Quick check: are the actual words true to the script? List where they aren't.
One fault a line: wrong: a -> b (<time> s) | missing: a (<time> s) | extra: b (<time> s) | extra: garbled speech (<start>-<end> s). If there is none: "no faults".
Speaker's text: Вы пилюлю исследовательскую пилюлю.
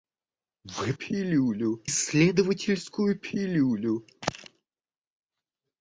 no faults